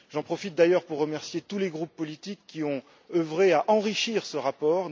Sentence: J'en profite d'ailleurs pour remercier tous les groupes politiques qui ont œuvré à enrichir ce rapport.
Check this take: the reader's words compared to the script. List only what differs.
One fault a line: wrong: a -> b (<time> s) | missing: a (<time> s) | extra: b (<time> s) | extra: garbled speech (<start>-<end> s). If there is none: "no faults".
no faults